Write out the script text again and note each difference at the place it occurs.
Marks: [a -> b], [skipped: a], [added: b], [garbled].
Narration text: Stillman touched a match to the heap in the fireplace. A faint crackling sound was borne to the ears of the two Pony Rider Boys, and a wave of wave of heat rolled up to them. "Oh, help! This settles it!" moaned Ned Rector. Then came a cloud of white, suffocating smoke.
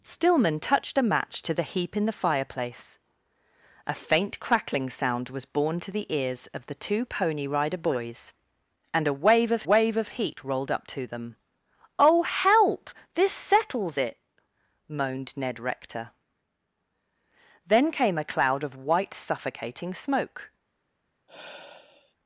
Stillman touched a match to the heap in the fireplace. A faint crackling sound was borne to the ears of the two Pony Rider Boys, and a wave of wave of heat rolled up to them. "Oh, help! This settles it!" moaned Ned Rector. Then came a cloud of white, suffocating smoke.